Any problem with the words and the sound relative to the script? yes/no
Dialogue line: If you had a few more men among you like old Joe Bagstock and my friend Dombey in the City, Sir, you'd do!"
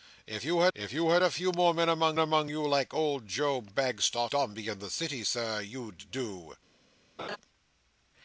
yes